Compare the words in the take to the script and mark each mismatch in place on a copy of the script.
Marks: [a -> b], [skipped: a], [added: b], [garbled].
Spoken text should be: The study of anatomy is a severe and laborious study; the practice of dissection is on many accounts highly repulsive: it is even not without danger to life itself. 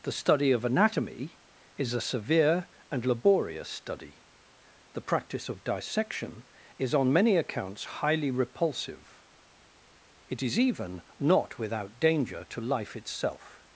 The study of anatomy is a severe and laborious study; the practice of dissection is on many accounts highly repulsive: it is even not without danger to life itself.